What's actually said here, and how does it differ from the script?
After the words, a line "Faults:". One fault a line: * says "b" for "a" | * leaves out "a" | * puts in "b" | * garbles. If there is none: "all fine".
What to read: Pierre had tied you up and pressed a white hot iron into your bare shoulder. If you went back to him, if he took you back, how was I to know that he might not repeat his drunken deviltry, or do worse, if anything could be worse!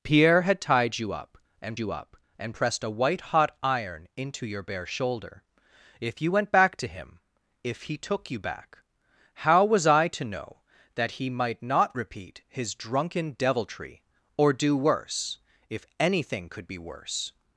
Pierre had tied you up and you up and pressed a white hot iron into your bare shoulder. If you went back to him, if he took you back, how was I to know that he might not repeat his drunken deviltry, or do worse, if anything could be worse!
Faults:
* puts in "you up and"